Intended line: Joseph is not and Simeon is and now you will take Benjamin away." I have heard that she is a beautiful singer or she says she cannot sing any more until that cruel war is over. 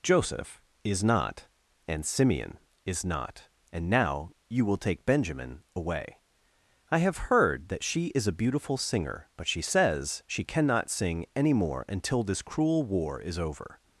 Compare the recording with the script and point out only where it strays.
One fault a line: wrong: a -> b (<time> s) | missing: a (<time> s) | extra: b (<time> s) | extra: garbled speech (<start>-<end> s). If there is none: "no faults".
extra: not (3.0 s)
wrong: or -> but (9.4 s)
wrong: that -> this (12.2 s)